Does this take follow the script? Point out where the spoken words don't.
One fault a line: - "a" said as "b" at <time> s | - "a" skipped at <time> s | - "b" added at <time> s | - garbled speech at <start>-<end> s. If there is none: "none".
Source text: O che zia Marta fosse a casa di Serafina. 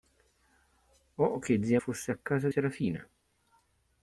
- "Marta" skipped at 1.8 s
- "di" skipped at 2.5 s